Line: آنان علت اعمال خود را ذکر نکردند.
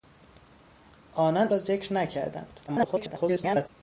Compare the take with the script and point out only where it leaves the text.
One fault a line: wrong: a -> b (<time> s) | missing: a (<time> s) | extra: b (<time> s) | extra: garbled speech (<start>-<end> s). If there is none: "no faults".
missing: علت اعمال خود (1.5 s)
extra: garbled speech (2.7-3.7 s)